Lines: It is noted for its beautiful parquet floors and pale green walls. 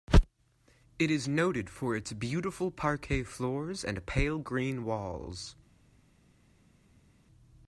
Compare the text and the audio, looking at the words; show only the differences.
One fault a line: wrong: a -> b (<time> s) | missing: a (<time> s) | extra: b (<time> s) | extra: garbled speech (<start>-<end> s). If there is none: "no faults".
no faults